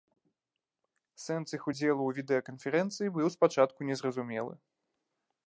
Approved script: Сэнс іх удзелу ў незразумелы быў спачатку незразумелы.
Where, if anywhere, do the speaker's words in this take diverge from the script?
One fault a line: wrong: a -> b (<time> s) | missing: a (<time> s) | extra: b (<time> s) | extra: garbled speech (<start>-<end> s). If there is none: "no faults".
wrong: незразумелы -> відэаканферэнцыі (2.2 s)